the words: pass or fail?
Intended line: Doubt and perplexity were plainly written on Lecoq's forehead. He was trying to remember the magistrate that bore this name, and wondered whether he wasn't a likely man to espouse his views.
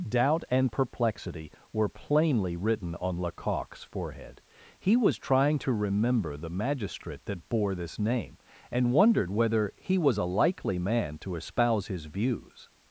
fail